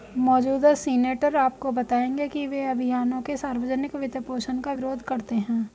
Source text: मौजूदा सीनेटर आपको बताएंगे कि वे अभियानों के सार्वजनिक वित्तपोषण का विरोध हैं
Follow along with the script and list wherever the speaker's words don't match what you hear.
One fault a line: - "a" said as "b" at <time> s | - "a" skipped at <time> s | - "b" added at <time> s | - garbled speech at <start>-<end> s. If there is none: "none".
- "करते" added at 5.0 s